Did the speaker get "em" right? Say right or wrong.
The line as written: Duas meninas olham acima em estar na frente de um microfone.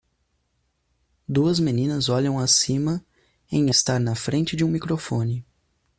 right